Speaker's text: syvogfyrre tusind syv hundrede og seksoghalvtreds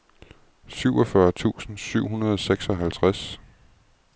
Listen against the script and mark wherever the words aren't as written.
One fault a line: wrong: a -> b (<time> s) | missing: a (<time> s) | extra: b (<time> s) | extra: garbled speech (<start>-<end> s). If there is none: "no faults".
no faults